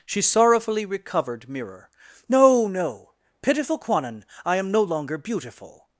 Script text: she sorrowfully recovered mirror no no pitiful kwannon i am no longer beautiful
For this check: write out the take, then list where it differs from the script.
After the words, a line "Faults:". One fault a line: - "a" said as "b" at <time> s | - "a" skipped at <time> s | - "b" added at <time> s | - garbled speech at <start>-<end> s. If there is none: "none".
she sorrowfully recovered mirror no no pitiful kwannon i am no longer beautiful
Faults:
none